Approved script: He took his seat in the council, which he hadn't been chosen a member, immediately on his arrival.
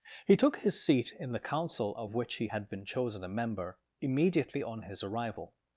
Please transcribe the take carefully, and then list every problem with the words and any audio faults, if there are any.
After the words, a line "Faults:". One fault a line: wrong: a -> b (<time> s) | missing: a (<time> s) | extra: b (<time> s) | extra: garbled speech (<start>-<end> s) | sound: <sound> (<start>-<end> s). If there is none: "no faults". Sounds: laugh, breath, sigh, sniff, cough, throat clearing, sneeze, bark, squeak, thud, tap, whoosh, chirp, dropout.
He took his seat in the council, of which he had been chosen a member, immediately on his arrival.
Faults:
extra: of (2.0 s)
wrong: hadn't -> had (2.5 s)